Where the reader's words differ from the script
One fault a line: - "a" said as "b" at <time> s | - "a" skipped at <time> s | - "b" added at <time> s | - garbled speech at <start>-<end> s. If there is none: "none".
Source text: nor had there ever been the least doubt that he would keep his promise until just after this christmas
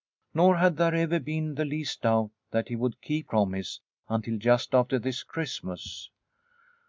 - "his" skipped at 3.3 s